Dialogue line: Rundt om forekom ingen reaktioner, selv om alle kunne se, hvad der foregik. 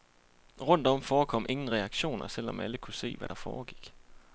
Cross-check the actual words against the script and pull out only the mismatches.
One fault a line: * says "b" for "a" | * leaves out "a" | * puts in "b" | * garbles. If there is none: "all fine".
all fine